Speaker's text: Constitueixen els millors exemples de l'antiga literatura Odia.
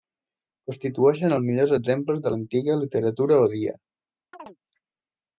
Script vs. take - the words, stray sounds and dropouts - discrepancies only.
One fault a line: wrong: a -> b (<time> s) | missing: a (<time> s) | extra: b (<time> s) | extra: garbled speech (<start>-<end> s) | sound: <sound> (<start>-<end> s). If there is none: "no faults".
sound: chirp (4.3-4.6 s)